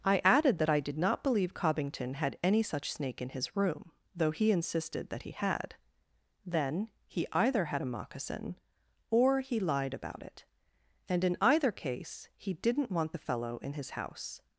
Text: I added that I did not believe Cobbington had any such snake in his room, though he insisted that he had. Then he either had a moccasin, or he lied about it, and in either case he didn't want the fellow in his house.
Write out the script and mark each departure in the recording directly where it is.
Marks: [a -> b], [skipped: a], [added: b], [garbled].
I added that I did not believe Cobbington had any such snake in his room, though he insisted that he had. Then he either had a moccasin, or he lied about it, and in either case he didn't want the fellow in his house.